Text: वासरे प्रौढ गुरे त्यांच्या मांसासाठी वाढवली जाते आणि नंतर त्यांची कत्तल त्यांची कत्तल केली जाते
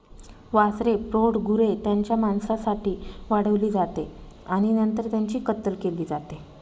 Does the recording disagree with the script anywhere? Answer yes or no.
yes